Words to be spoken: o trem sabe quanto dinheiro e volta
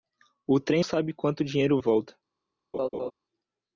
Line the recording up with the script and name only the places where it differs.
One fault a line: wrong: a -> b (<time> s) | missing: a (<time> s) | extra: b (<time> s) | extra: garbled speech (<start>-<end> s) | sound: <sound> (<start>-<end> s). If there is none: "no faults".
sound: laugh (2.7-3.1 s)